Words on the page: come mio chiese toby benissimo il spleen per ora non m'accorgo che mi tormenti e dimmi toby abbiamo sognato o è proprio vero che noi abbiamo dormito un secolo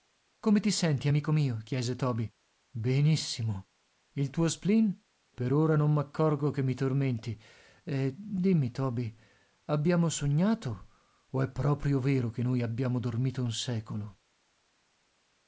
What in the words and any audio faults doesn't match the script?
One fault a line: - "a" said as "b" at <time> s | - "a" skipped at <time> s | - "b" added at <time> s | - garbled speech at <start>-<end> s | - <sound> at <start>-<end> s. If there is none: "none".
- "ti senti amico" added at 0.6 s
- "tuo" added at 4.3 s